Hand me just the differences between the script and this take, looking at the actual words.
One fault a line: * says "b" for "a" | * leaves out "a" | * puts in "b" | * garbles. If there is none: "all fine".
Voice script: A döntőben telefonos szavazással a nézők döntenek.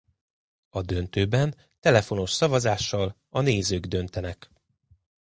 all fine